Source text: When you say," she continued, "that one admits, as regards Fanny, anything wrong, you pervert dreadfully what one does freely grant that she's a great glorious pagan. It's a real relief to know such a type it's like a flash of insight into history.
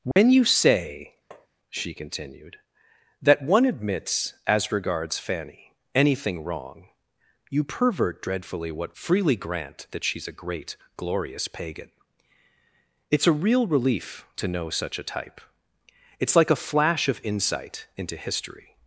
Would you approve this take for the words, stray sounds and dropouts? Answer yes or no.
no